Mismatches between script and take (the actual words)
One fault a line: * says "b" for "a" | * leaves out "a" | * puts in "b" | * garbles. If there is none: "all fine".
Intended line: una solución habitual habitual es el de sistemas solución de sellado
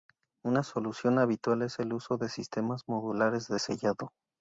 * leaves out "habitual"
* puts in "uso"
* says "modulares" for "solución"